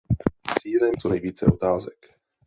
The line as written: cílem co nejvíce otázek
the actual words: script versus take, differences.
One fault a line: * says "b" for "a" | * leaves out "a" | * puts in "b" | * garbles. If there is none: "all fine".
all fine